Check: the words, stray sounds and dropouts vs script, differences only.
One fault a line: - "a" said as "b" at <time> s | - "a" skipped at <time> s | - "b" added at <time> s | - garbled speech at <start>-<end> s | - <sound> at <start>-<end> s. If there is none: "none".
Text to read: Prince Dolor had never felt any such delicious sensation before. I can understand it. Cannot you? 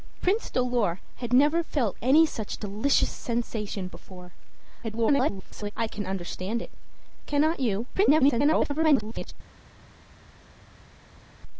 - garbled speech at 4.8-5.7 s
- garbled speech at 7.9-9.3 s